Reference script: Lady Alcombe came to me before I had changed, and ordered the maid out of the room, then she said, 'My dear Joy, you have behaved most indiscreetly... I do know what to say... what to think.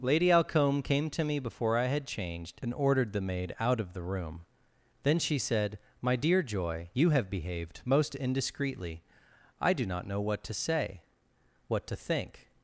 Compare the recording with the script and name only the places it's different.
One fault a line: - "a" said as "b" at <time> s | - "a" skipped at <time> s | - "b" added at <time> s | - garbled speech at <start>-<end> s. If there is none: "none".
- "not" added at 9.9 s